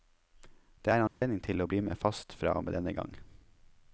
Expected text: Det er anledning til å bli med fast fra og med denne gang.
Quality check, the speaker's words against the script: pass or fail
pass